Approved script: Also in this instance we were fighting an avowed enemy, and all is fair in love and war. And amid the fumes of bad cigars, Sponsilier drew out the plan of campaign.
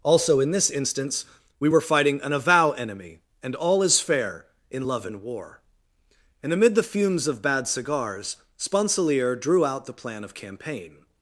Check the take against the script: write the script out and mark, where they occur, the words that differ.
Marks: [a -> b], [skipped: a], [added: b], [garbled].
Also in this instance we were fighting an [avowed -> avow] enemy, and all is fair in love and war. And amid the fumes of bad cigars, Sponsilier drew out the plan of campaign.